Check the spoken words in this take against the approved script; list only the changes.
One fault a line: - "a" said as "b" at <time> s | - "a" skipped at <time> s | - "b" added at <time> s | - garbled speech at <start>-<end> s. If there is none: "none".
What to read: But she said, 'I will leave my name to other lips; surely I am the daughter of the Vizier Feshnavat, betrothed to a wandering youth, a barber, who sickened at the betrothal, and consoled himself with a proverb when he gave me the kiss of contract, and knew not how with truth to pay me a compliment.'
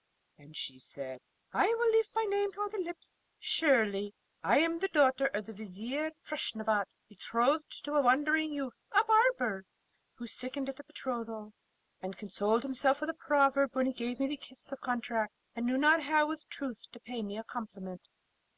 - "But" said as "And" at 0.3 s